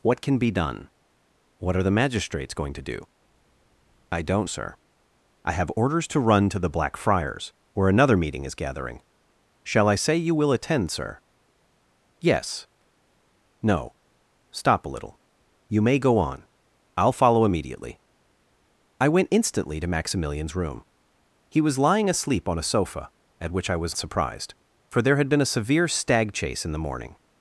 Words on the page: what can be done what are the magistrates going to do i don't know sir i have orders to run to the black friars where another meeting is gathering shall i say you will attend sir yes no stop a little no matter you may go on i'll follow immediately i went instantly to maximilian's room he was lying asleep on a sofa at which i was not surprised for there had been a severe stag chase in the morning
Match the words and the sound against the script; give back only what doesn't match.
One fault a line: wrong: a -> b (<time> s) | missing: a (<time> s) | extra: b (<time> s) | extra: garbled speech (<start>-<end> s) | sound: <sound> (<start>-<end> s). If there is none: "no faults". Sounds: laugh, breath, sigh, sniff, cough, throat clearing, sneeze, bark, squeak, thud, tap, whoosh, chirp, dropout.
missing: know (4.5 s)
missing: no matter (15.2 s)
missing: not (23.9 s)